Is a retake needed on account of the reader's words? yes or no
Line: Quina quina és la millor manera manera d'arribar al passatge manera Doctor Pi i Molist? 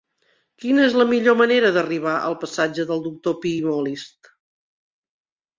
yes